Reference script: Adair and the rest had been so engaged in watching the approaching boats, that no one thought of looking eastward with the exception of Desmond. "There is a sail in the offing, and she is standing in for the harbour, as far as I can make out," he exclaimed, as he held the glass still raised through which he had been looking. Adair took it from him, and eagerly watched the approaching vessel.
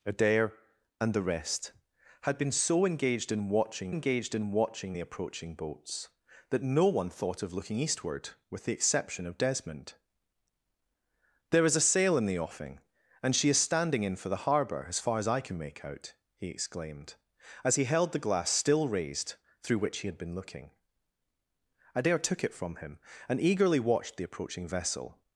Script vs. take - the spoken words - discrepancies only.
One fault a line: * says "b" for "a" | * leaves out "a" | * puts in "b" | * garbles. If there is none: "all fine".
* puts in "engaged in watching"